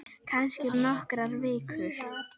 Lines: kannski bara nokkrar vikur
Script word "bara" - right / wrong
wrong